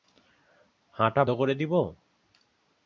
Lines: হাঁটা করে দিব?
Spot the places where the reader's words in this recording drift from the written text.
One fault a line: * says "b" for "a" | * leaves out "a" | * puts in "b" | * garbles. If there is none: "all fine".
all fine